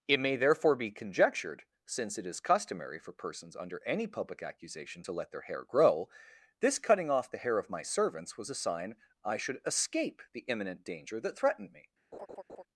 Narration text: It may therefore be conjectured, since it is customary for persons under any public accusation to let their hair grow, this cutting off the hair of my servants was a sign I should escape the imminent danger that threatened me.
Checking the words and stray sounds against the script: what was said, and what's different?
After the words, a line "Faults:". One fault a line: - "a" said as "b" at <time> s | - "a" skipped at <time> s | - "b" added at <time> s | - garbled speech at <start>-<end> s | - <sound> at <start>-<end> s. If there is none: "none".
It may therefore be conjectured, since it is customary for persons under any public accusation to let their hair grow, this cutting off the hair of my servants was a sign I should escape the imminent danger that threatened me.
Faults:
- laugh at 12.1-12.6 s